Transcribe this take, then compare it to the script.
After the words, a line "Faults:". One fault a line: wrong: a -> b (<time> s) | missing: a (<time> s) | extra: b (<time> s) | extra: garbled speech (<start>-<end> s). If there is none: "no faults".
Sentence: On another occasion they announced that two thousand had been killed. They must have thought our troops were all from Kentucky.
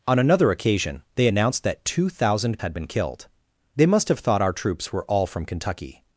On another occasion they announced that two thousand had been killed. They must have thought our troops were all from Kentucky.
Faults:
no faults